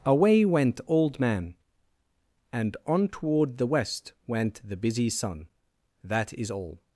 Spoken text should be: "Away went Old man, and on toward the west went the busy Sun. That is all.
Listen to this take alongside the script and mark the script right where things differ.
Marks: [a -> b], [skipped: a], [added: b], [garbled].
"Away went Old man, and on toward the west went the busy Sun. That is all.